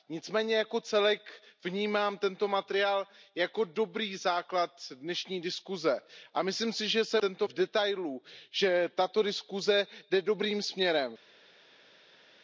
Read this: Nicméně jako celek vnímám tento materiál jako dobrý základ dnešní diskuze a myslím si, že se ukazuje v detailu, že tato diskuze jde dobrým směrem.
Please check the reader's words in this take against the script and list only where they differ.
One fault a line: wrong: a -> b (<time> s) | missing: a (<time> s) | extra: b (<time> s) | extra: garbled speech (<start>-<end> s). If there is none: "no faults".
wrong: ukazuje -> tento (7.2 s)